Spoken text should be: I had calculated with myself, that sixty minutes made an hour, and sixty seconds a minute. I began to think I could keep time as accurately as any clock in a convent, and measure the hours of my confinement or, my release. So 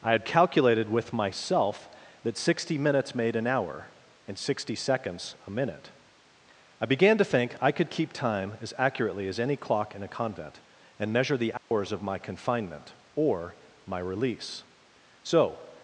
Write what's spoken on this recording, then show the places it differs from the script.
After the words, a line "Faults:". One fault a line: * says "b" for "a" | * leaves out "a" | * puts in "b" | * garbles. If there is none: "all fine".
I had calculated with myself, that sixty minutes made an hour, and sixty seconds a minute. I began to think I could keep time as accurately as any clock in a convent, and measure the hours of my confinement or, my release. So
Faults:
all fine